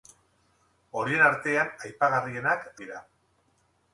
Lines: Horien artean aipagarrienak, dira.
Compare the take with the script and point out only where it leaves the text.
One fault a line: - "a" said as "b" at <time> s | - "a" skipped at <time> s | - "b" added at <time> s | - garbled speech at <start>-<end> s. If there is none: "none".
none